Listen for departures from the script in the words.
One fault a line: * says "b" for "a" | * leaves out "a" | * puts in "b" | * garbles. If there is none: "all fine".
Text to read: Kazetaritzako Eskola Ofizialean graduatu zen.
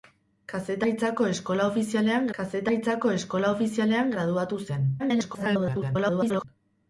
* puts in "kazetaritzako Eskola Ofizialean"
* garbles